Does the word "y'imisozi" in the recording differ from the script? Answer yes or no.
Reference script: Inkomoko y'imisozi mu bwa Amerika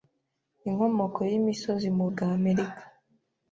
no